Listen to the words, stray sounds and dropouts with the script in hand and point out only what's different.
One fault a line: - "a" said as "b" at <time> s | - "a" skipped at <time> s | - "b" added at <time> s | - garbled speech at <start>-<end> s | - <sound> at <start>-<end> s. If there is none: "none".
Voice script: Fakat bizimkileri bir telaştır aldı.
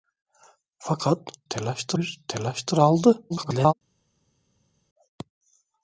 - "bizimkileri" said as "telaştır" at 1.5 s
- garbled speech at 3.3-3.7 s